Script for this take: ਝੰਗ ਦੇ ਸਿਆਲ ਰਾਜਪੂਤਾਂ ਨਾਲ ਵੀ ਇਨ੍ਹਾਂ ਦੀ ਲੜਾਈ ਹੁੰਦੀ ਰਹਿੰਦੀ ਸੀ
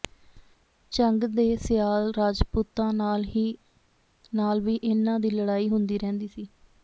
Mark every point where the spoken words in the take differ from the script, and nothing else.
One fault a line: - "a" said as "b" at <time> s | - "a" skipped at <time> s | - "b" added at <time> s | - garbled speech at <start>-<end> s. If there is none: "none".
none